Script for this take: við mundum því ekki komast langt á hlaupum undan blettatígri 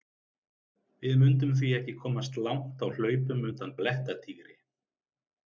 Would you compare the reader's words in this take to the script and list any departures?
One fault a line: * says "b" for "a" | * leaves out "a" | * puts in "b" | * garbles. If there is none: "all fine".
all fine